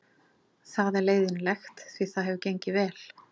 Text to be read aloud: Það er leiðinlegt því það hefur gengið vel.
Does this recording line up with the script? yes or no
yes